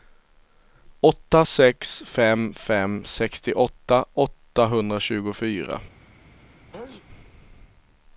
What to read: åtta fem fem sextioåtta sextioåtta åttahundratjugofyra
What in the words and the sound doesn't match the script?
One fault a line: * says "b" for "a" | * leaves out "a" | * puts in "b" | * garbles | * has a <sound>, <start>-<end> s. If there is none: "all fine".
* puts in "sex"
* leaves out "sextioåtta"
* has a sneeze, 6.7-7.1 s